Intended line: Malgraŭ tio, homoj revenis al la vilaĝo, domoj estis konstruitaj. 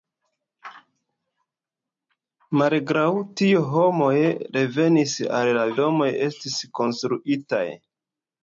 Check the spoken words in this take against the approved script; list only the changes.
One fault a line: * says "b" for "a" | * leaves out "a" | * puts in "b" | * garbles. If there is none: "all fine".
* leaves out "vilaĝo"